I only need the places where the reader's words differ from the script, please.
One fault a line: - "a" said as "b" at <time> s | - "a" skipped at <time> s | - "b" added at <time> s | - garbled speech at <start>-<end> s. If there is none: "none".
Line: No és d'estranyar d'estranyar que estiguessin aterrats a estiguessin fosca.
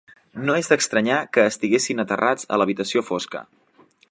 - "d'estranyar" skipped at 1.2 s
- "estiguessin" said as "l'habitació" at 2.6 s